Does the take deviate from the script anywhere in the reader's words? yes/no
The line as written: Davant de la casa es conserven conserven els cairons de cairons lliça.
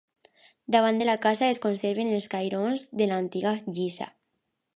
yes